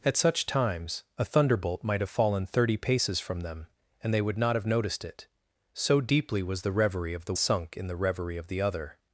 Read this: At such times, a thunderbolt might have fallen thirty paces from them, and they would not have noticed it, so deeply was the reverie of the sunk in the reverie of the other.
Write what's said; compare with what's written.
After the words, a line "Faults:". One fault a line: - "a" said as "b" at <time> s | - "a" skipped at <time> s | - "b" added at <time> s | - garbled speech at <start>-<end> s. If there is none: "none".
At such times, a thunderbolt might have fallen thirty paces from them, and they would not have noticed it, so deeply was the reverie of the sunk in the reverie of the other.
Faults:
none